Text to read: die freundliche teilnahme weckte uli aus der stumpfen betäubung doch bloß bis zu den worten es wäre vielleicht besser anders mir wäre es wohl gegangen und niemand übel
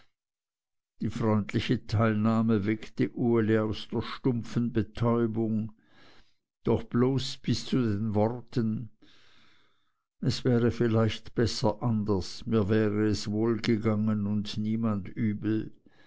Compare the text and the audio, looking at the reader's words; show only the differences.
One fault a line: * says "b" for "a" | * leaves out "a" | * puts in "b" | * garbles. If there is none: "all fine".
all fine